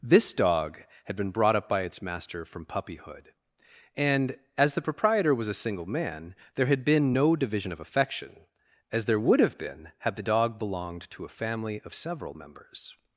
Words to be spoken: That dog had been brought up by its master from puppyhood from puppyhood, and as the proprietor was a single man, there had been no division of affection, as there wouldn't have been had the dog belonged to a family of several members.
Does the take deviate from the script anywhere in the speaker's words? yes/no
yes